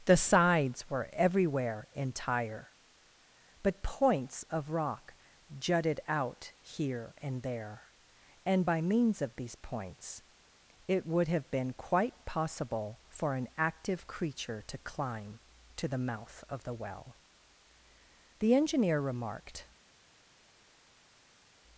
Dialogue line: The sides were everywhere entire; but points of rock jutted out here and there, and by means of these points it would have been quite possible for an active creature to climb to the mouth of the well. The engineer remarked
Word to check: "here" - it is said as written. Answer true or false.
true